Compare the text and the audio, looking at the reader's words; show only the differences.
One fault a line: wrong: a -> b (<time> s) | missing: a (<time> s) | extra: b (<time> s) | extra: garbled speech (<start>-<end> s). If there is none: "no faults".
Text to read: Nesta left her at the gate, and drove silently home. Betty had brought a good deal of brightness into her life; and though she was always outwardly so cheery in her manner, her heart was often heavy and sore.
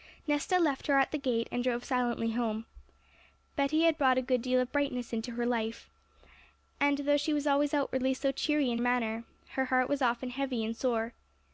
missing: her (8.8 s)